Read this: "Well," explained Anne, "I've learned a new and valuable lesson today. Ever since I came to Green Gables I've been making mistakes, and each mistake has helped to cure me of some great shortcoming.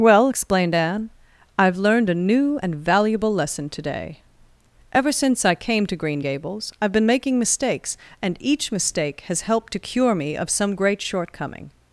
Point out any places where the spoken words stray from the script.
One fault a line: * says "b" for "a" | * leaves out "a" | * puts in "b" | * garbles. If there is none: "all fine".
all fine